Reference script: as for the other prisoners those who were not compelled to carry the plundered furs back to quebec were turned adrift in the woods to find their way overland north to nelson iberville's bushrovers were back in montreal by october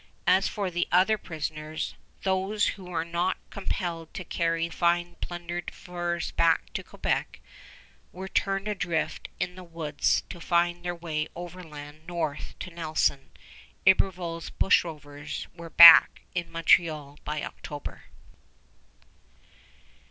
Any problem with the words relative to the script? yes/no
yes